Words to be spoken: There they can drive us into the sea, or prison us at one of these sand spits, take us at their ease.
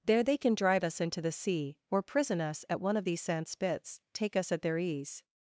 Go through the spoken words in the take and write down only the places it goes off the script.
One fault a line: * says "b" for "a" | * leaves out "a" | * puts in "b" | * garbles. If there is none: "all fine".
all fine